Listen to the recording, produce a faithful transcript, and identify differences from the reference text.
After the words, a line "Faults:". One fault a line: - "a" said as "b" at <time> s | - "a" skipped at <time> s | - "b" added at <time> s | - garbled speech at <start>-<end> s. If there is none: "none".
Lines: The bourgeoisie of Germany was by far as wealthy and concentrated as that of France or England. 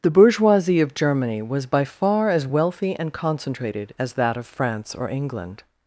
The bourgeoisie of Germany was by far as wealthy and concentrated as that of France or England.
Faults:
none